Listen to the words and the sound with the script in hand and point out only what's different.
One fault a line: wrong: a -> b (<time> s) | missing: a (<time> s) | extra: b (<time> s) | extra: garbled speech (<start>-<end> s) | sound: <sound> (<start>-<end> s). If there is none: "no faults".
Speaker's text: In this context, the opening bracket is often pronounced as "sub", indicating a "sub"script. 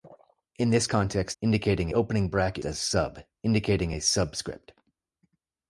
wrong: the -> indicating (1.4 s)
missing: is often pronounced (2.6 s)